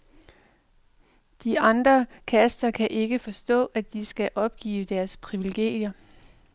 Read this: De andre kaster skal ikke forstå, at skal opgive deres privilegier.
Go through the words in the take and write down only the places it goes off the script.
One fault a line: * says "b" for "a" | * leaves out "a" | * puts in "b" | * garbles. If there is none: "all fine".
* says "kan" for "skal"
* puts in "de"